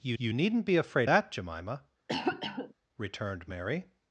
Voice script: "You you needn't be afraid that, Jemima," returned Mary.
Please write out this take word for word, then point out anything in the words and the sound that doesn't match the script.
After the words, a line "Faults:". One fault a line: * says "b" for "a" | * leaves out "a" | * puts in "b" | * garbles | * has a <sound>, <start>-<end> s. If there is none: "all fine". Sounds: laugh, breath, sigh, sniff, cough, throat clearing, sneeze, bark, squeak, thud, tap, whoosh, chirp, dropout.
"You you needn't be afraid that, Jemima," returned Mary.
Faults:
* has a cough, 2.1-2.7 s